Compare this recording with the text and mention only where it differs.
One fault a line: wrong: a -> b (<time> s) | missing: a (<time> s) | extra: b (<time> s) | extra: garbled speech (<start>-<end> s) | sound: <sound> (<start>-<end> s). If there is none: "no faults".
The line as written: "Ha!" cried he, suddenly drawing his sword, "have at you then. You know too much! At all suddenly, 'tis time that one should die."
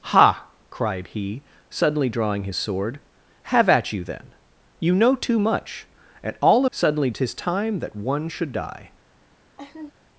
sound: laugh (9.6-9.9 s)